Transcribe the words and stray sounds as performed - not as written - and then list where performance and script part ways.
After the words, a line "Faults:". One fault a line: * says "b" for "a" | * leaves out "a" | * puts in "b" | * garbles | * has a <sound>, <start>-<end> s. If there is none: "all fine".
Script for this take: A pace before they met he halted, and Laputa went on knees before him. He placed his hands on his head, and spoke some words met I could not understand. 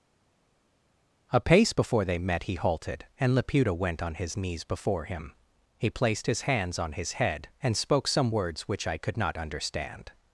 A pace before they met he halted, and Laputa went on his knees before him. He placed his hands on his head, and spoke some words which I could not understand.
Faults:
* puts in "his"
* says "which" for "met"